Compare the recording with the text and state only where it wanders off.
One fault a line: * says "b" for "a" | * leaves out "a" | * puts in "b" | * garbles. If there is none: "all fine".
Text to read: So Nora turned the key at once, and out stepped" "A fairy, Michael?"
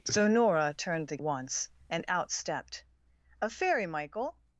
* leaves out "key at"